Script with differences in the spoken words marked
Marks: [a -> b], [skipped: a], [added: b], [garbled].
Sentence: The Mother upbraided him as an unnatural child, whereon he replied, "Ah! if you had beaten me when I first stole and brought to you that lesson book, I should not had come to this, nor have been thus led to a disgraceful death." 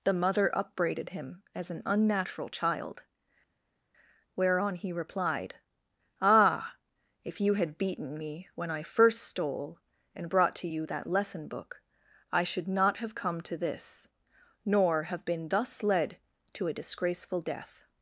The Mother upbraided him as an unnatural child, whereon he replied, "Ah! if you had beaten me when I first stole and brought to you that lesson book, I should not [had -> have] come to this, nor have been thus led to a disgraceful death."